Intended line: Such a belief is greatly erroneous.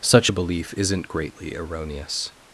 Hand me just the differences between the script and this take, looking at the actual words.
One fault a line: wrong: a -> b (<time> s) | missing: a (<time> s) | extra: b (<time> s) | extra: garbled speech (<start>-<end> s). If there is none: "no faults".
wrong: is -> isn't (0.8 s)